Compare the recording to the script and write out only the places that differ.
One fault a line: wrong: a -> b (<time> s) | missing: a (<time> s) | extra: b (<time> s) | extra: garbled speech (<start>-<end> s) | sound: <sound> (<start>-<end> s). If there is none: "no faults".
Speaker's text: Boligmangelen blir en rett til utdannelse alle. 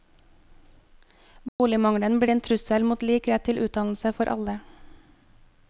sound: dropout (1.5-1.6 s)
extra: trussel mot lik (2.4 s)
extra: for (4.2 s)